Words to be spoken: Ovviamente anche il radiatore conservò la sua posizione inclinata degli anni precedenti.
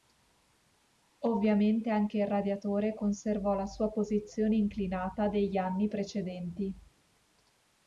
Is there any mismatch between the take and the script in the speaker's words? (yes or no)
no